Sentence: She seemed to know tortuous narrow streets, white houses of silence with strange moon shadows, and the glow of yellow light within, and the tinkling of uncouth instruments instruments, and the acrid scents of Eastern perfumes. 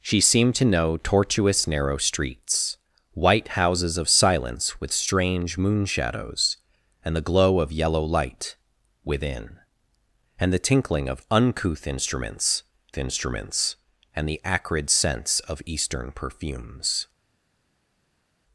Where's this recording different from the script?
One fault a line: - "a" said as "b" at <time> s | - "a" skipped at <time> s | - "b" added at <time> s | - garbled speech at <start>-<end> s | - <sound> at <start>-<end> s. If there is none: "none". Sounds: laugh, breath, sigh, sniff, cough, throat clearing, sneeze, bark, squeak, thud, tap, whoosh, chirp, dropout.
none